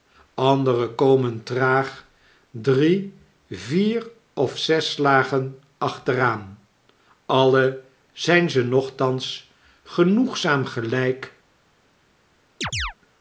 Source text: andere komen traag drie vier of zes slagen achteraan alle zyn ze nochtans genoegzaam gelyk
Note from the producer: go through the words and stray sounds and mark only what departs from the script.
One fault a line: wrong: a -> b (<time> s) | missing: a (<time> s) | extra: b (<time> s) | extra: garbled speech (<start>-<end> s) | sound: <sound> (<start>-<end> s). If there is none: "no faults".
sound: chirp (12.6-12.9 s)